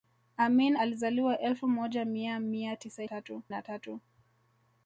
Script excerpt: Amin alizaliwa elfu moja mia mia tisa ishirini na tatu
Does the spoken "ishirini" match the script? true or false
false